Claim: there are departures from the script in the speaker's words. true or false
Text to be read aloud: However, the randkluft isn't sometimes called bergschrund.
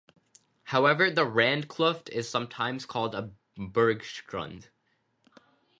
true